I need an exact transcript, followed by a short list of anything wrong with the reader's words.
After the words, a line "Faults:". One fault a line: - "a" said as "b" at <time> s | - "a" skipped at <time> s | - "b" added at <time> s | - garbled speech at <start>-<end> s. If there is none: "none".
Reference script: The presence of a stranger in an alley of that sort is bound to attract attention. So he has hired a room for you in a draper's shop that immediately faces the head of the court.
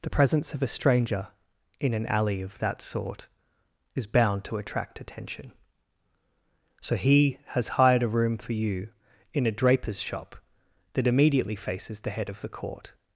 The presence of a stranger in an alley of that sort is bound to attract attention. So he has hired a room for you in a draper's shop that immediately faces the head of the court.
Faults:
none